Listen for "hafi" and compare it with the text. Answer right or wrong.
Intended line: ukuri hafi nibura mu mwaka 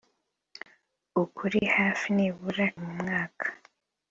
right